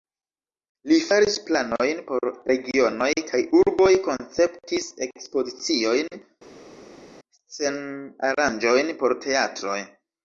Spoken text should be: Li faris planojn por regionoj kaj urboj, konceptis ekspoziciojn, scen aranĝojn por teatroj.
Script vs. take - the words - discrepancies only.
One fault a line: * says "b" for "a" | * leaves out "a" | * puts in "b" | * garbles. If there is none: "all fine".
all fine